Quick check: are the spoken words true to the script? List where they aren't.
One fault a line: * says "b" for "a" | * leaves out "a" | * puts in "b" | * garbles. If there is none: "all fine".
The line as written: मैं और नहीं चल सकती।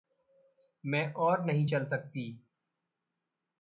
all fine